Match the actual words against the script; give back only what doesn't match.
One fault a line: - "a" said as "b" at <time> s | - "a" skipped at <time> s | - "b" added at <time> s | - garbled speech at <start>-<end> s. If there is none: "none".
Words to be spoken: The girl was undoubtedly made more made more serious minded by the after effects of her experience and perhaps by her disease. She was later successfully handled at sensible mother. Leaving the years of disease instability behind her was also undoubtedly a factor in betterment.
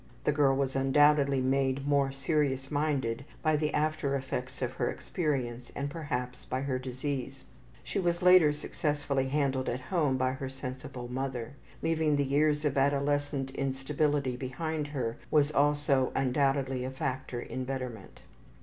- "made more" skipped at 2.1 s
- "home by her" added at 9.9 s
- "disease" said as "adolescent" at 12.8 s